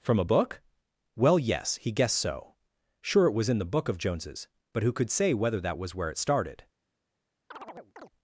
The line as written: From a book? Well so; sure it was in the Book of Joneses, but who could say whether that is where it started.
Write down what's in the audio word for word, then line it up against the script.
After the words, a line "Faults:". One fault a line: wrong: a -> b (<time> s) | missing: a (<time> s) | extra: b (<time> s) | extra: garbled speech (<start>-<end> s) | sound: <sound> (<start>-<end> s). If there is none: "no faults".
From a book? Well yes, he guessed so; sure it was in the Book of Joneses, but who could say whether that was where it started.
Faults:
extra: yes he guessed (1.4 s)
wrong: is -> was (5.8 s)
sound: chirp (7.5-8.1 s)